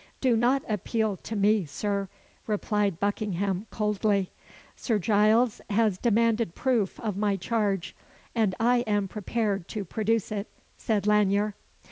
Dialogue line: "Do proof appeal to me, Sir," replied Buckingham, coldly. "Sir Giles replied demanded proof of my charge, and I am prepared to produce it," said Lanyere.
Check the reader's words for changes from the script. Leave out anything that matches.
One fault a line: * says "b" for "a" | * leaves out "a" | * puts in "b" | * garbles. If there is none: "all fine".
* says "not" for "proof"
* says "has" for "replied"